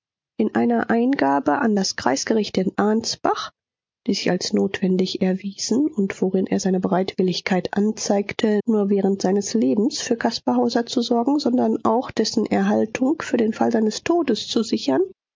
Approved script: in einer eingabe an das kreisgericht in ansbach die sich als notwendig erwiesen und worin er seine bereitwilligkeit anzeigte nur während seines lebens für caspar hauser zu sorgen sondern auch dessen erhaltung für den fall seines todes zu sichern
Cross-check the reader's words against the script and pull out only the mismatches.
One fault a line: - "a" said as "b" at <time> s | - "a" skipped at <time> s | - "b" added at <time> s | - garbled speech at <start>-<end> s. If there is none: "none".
none